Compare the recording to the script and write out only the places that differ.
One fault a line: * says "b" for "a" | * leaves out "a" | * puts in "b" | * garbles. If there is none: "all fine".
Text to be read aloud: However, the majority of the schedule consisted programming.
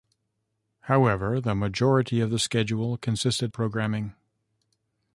all fine